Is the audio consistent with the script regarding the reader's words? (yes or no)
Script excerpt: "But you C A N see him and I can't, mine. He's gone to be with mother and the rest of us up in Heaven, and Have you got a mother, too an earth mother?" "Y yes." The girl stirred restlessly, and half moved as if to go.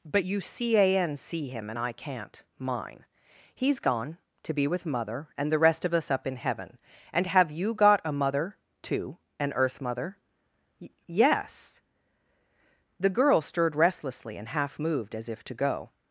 yes